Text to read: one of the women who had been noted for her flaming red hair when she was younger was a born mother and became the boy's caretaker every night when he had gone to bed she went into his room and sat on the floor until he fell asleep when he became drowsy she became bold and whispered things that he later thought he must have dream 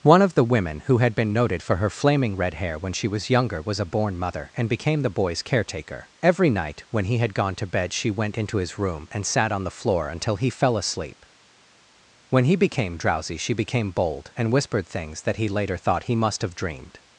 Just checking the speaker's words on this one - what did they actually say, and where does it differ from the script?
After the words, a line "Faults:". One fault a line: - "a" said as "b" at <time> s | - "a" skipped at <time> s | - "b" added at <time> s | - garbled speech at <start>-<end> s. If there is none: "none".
one of the women who had been noted for her flaming red hair when she was younger was a born mother and became the boy's caretaker every night when he had gone to bed she went into his room and sat on the floor until he fell asleep when he became drowsy she became bold and whispered things that he later thought he must have dreamed
Faults:
- "dream" said as "dreamed" at 16.6 s